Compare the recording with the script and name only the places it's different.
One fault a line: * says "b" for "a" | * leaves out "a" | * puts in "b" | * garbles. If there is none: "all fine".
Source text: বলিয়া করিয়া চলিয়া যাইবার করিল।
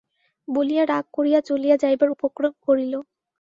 * puts in "রাগ"
* puts in "উপক্রম"